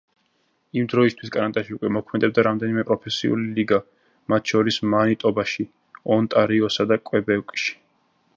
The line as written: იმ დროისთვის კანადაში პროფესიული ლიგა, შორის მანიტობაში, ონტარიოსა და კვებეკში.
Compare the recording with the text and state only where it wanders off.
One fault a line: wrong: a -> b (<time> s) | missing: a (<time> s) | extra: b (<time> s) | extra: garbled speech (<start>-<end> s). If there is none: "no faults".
extra: უკვე მოქმედებდა რამდენიმე (1.8 s)
extra: მათ (4.3 s)